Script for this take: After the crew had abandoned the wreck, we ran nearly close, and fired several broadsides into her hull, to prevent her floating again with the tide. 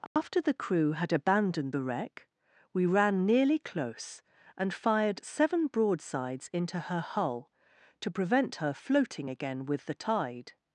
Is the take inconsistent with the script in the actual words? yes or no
yes